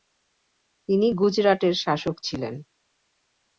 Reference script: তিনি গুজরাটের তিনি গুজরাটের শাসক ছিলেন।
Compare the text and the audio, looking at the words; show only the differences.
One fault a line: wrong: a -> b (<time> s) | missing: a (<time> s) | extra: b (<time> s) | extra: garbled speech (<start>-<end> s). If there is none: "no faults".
missing: তিনি গুজরাটের (1.7 s)